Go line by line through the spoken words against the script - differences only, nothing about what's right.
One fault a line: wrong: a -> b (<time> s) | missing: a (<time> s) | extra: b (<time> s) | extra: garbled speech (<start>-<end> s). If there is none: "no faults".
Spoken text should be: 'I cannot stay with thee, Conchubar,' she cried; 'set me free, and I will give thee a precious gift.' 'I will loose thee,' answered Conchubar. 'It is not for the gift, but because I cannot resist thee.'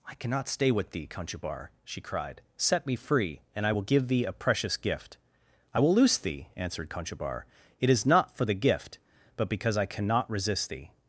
no faults